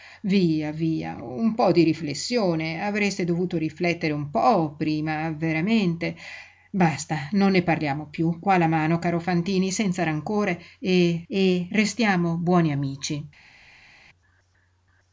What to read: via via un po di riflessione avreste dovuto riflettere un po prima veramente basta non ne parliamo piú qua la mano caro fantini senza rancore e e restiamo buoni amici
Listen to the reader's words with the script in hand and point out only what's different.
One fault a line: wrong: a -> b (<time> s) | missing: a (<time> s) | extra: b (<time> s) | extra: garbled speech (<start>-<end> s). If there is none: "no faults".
no faults